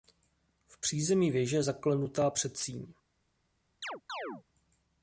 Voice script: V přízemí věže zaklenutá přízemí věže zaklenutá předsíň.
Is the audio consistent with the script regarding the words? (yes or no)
no